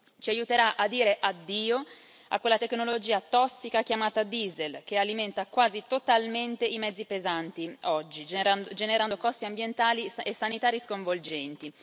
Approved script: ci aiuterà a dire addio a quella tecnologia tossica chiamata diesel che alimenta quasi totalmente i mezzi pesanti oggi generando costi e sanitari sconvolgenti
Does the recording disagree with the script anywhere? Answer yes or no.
yes